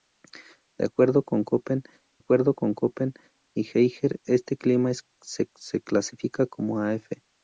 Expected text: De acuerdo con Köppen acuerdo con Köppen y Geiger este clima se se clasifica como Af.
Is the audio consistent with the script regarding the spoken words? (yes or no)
yes